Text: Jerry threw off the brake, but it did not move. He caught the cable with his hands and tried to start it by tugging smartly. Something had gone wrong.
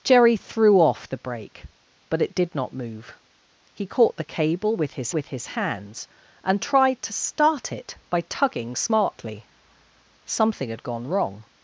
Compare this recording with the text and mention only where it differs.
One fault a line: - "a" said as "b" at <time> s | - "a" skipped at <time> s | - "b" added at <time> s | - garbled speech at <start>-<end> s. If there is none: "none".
- "with his" added at 5.1 s